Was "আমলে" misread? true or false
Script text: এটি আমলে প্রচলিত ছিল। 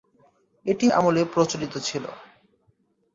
false